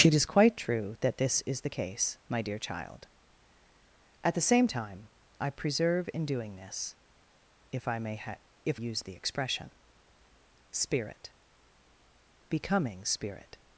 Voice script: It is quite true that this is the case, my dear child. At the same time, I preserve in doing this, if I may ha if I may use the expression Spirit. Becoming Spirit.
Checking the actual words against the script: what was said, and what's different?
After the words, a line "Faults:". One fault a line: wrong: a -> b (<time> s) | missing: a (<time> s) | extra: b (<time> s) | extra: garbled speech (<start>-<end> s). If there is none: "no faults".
It is quite true that this is the case, my dear child. At the same time, I preserve in doing this, if I may ha if use the expression Spirit. Becoming Spirit.
Faults:
missing: I may (8.8 s)